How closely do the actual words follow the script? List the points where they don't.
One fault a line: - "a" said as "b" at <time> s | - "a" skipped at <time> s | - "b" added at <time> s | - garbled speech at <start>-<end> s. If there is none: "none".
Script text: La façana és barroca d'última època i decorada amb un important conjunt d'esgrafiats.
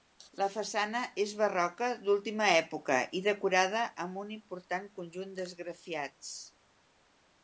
none